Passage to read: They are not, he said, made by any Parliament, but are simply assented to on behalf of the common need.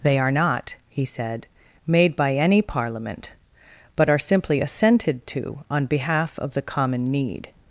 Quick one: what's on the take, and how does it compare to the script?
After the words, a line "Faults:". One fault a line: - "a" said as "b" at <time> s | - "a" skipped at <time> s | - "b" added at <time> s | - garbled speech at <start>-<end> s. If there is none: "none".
They are not, he said, made by any Parliament, but are simply assented to on behalf of the common need.
Faults:
none